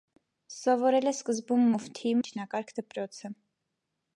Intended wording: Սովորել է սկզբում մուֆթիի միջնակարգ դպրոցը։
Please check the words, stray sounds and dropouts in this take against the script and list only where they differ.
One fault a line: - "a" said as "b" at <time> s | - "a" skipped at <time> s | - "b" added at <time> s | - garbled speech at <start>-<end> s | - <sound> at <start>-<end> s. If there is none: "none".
none